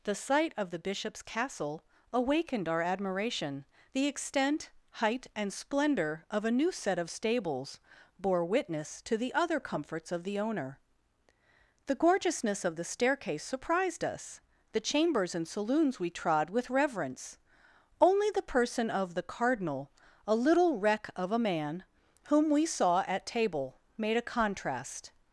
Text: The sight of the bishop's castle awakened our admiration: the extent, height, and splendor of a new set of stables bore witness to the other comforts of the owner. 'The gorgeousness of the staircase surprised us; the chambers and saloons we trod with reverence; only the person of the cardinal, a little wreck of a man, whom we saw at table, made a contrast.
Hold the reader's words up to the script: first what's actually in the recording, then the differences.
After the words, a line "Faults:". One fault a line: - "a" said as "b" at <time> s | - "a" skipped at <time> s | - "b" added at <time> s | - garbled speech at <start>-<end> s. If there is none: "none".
The sight of the bishop's castle awakened our admiration: the extent, height, and splendor of a new set of stables bore witness to the other comforts of the owner. 'The gorgeousness of the staircase surprised us; the chambers and saloons we trod with reverence; only the person of the cardinal, a little wreck of a man, whom we saw at table, made a contrast.
Faults:
none